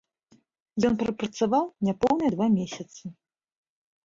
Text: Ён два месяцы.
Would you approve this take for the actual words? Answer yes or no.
no